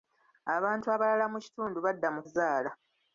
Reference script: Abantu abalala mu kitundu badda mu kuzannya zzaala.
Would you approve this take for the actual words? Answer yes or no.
no